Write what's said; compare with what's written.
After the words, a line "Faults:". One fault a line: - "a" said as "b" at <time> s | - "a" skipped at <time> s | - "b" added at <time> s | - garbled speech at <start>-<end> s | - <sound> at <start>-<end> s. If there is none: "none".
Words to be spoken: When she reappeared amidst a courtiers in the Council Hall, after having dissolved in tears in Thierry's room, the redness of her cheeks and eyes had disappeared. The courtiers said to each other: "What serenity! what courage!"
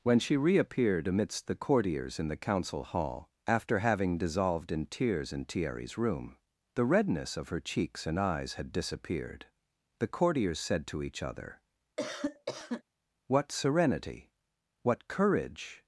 When she reappeared amidst the courtiers in the Council Hall, after having dissolved in tears in Thierry's room, the redness of her cheeks and eyes had disappeared. The courtiers said to each other: "What serenity! what courage!"
Faults:
- "a" said as "the" at 1.4 s
- cough at 12.0-12.8 s